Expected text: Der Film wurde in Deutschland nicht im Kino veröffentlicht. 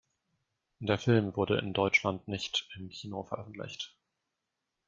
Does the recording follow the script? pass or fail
pass